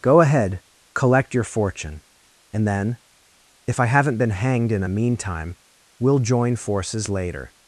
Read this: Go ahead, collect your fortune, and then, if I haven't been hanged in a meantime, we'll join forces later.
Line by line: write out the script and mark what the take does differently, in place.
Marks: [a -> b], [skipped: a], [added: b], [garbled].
Go ahead, collect your fortune, and then, if I haven't been hanged in a meantime, we'll join forces later.